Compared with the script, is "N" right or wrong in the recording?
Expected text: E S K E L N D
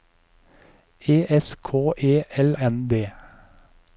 right